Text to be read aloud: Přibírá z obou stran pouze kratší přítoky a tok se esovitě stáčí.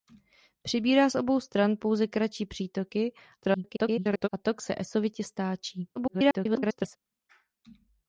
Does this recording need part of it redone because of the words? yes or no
yes